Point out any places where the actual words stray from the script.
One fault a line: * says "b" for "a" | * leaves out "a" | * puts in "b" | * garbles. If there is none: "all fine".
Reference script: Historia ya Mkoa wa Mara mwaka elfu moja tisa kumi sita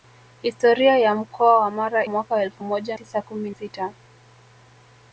all fine